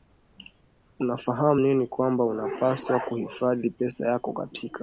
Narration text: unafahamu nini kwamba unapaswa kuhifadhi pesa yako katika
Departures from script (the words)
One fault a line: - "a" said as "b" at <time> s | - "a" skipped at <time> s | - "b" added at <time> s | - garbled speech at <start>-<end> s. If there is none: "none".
none